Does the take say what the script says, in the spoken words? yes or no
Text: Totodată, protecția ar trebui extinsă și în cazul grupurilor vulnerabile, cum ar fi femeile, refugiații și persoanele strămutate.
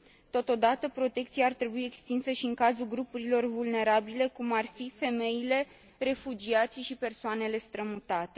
yes